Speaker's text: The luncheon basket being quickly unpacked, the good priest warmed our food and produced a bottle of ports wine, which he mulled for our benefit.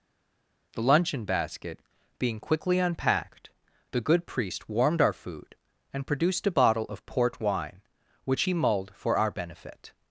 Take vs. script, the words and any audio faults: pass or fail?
fail